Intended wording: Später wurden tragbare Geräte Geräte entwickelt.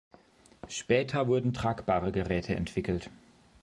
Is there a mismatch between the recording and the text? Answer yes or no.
yes